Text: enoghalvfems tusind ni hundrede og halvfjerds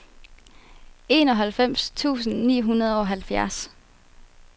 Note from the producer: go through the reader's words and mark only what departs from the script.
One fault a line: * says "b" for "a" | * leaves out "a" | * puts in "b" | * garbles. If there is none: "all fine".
all fine